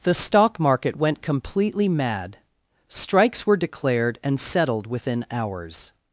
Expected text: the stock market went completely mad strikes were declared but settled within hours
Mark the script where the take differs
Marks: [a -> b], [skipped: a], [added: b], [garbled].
the stock market went completely mad strikes were declared [but -> and] settled within hours